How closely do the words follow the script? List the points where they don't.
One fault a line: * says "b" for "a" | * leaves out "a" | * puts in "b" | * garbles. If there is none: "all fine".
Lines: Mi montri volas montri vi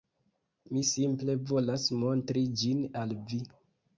* says "simple" for "montri"
* puts in "ĝin al"